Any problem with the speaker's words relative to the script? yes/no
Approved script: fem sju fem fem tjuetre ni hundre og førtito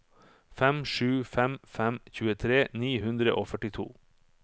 no